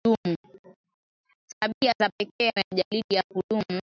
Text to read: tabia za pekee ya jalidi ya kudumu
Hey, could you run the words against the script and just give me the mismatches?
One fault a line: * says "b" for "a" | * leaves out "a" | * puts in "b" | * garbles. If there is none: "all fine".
all fine